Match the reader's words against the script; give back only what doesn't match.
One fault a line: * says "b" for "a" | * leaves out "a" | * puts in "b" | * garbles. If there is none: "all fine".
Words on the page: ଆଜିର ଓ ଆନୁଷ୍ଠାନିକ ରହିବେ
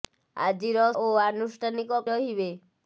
all fine